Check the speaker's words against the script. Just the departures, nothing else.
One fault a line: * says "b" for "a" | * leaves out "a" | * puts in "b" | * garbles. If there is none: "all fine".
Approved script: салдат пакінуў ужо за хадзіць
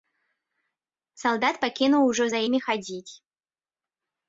* puts in "імі"